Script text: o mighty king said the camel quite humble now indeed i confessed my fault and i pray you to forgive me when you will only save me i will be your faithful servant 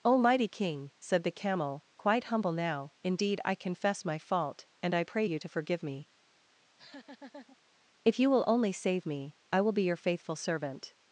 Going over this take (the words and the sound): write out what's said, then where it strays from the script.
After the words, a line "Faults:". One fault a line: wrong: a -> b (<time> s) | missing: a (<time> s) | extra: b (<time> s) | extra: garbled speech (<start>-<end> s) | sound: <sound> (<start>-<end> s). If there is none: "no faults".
o mighty king said the camel quite humble now indeed i confess my fault and i pray you to forgive me if you will only save me i will be your faithful servant
Faults:
wrong: confessed -> confess (3.5 s)
sound: laugh (6.6-7.6 s)
wrong: when -> if (8.0 s)